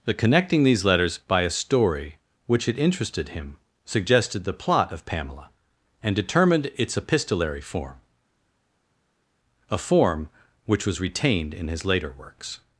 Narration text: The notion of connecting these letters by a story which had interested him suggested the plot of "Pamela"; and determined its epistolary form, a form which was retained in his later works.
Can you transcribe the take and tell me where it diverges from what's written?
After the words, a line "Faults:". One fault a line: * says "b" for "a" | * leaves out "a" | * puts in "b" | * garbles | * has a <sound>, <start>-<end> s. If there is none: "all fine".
The connecting these letters by a story which had interested him suggested the plot of "Pamela"; and determined its epistolary form, a form which was retained in his later works.
Faults:
* leaves out "notion of"